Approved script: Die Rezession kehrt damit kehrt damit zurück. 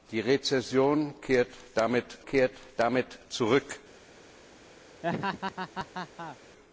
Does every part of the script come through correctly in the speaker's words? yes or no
yes